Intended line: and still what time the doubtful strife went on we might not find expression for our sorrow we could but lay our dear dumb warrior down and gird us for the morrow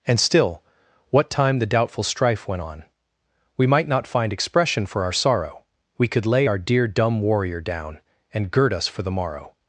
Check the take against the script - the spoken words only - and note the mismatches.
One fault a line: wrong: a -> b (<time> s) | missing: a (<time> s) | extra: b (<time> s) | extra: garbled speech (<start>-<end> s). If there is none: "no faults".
missing: but (6.2 s)